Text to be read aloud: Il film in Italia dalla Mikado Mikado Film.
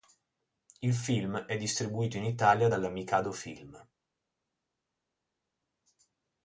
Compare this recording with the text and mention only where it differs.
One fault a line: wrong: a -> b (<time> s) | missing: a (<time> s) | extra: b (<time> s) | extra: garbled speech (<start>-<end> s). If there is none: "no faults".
extra: è distribuito (1.4 s)
missing: Mikado (3.3 s)